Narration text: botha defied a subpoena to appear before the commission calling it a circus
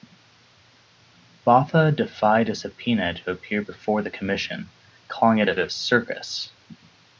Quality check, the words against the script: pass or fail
fail